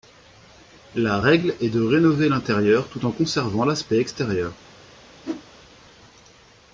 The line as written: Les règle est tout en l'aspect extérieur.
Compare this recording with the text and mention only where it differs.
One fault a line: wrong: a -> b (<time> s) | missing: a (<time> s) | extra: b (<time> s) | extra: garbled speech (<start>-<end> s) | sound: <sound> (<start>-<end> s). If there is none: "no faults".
wrong: Les -> La (0.9 s)
extra: de rénover l'intérieur (1.7 s)
extra: conservant (3.1 s)
sound: whoosh (5.2-5.4 s)